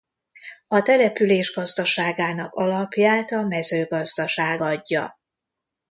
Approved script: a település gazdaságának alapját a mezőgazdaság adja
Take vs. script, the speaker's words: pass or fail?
pass